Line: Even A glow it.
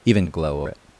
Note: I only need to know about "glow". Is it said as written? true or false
true